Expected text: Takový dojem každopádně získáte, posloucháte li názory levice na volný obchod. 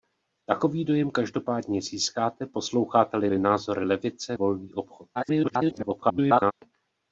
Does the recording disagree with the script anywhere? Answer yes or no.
yes